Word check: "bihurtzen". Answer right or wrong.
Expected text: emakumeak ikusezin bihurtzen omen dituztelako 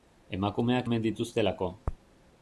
wrong